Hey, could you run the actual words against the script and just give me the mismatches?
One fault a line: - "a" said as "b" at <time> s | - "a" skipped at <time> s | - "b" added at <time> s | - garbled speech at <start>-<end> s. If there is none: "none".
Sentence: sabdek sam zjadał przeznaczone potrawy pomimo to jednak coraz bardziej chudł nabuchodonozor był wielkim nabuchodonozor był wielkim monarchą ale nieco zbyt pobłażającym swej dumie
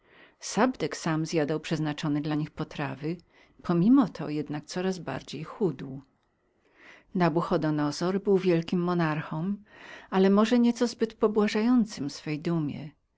- "dla nich" added at 2.2 s
- "nabuchodonozor był wielkim" skipped at 8.8 s
- "może" added at 10.3 s